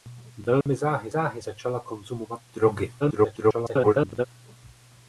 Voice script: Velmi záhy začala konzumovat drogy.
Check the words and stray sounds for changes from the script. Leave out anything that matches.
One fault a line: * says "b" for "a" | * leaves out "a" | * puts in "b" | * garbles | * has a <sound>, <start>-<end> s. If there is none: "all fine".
* has a dropout, 0.6-0.7 s
* puts in "záhy"
* garbles